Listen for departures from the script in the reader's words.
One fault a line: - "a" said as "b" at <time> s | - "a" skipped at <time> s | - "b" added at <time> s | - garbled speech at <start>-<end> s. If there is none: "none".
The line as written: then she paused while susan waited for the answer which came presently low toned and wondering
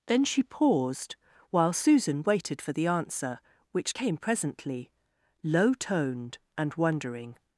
none